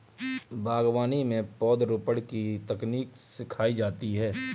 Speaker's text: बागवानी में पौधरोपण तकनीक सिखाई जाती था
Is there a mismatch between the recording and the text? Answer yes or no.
yes